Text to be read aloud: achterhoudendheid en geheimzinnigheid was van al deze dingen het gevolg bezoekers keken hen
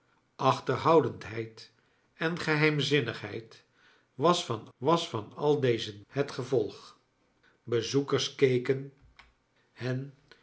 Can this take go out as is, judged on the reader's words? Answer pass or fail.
fail